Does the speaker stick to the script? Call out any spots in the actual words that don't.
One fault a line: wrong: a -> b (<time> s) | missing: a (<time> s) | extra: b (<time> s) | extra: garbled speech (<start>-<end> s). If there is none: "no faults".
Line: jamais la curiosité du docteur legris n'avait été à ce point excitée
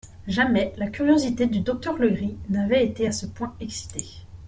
no faults